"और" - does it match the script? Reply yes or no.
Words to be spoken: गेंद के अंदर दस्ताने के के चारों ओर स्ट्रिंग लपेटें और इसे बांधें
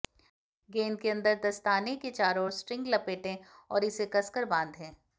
yes